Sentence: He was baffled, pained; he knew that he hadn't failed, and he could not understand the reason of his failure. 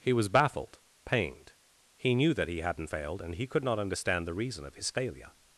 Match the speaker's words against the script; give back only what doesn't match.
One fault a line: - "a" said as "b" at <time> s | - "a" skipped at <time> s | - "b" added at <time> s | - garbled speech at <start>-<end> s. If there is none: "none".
none